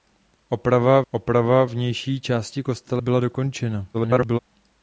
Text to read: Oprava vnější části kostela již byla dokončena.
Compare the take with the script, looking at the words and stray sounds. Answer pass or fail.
fail